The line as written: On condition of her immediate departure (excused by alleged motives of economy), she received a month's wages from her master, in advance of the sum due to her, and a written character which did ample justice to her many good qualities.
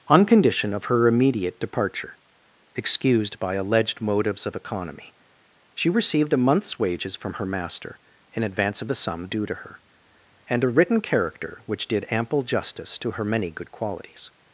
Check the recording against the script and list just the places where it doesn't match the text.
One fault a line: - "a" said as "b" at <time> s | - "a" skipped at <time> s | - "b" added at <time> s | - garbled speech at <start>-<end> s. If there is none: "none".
none